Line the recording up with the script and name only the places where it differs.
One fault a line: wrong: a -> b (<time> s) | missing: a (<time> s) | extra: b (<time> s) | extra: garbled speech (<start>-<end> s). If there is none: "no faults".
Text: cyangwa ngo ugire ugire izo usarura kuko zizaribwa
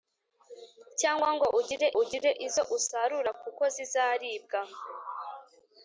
no faults